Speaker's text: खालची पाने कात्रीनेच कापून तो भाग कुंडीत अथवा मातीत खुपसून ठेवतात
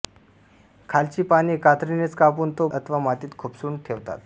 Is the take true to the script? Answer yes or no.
no